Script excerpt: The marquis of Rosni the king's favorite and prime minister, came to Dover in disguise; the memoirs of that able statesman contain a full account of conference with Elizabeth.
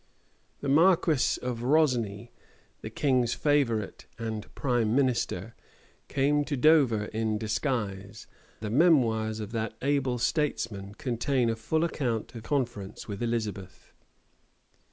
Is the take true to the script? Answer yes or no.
yes